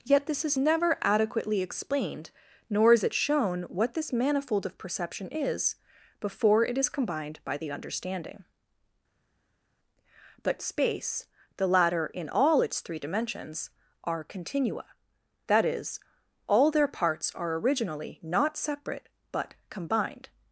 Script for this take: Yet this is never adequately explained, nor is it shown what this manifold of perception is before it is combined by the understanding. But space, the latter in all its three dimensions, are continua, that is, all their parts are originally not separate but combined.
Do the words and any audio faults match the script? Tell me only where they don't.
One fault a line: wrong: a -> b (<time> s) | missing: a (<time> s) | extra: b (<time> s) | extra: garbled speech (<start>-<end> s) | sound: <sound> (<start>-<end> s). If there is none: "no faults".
no faults